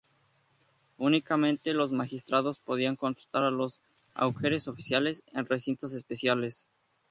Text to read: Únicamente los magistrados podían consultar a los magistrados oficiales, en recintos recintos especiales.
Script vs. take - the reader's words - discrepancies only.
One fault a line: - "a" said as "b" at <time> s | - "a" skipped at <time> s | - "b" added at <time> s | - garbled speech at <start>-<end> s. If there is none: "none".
- "magistrados" said as "augures" at 4.1 s
- "recintos" skipped at 5.9 s